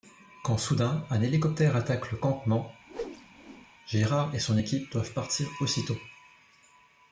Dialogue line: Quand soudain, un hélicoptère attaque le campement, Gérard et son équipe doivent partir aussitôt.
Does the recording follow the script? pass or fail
pass